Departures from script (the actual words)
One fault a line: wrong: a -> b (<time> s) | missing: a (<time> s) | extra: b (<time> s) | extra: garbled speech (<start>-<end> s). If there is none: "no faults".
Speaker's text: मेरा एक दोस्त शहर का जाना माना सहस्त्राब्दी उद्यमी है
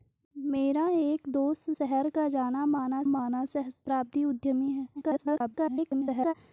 extra: माना (3.1 s)
extra: garbled speech (4.9-6.3 s)